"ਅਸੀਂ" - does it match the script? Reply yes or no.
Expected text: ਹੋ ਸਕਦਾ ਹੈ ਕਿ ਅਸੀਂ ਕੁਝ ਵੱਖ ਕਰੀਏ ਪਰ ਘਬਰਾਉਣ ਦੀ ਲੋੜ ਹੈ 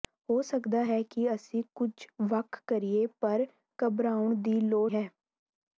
yes